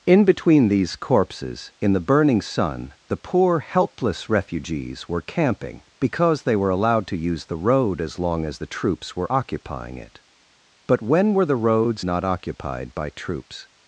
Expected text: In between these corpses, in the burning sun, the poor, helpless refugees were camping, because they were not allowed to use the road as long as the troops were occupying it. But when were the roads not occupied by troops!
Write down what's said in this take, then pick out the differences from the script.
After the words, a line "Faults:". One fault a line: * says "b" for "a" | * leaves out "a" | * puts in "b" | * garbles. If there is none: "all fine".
In between these corpses, in the burning sun, the poor, helpless refugees were camping, because they were allowed to use the road as long as the troops were occupying it. But when were the roads not occupied by troops!
Faults:
* leaves out "not"